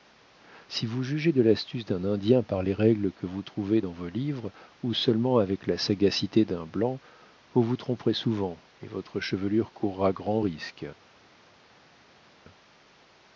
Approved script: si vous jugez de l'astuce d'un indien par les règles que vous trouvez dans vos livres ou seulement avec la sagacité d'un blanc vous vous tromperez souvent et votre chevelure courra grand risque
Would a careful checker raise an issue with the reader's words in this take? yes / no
no